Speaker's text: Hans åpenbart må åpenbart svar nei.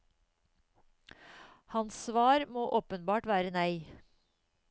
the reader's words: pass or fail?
fail